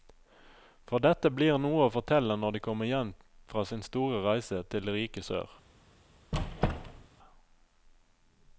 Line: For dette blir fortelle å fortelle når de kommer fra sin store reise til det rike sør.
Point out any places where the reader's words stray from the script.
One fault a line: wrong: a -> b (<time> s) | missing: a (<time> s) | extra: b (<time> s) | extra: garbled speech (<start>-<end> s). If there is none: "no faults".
wrong: fortelle -> noe (1.6 s)
extra: hjem (2.9 s)